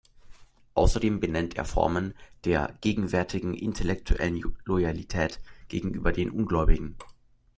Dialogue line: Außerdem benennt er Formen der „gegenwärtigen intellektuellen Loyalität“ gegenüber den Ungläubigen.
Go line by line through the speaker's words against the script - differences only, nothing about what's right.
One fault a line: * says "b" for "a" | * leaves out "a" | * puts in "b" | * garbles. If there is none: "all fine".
all fine